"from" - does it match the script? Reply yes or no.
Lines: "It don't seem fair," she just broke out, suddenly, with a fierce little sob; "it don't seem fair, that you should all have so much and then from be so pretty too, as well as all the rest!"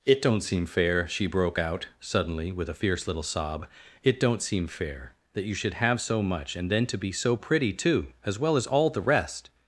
no